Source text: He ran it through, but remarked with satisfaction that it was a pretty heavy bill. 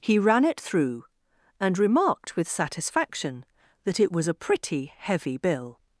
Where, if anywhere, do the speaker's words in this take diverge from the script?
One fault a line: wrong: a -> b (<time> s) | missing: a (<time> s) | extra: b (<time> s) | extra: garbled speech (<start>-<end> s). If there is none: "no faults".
wrong: but -> and (1.6 s)